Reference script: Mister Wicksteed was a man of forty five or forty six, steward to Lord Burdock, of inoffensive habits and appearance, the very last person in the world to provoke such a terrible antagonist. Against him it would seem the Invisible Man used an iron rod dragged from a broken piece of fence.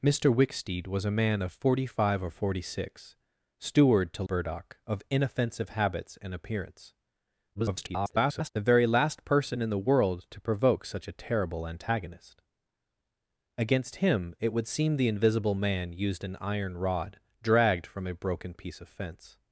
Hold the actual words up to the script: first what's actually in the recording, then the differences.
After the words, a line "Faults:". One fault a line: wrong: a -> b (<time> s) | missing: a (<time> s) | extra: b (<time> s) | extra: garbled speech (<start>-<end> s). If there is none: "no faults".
Mister Wicksteed was a man of forty five or forty six, steward to Burdock, of inoffensive habits and appearance, [garbled] the very last person in the world to provoke such a terrible antagonist. Against him it would seem the Invisible Man used an iron rod dragged from a broken piece of fence.
Faults:
missing: Lord (4.2 s)
extra: garbled speech (7.5-8.5 s)